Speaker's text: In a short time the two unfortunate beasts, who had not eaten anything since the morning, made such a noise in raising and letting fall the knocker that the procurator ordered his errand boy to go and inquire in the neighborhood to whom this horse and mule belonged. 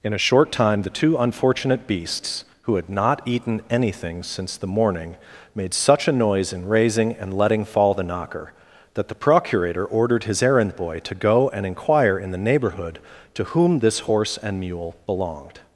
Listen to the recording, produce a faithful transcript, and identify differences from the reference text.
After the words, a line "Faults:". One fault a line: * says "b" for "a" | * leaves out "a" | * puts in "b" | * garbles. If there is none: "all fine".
In a short time the two unfortunate beasts, who had not eaten anything since the morning, made such a noise in raising and letting fall the knocker that the procurator ordered his errand boy to go and inquire in the neighborhood to whom this horse and mule belonged.
Faults:
all fine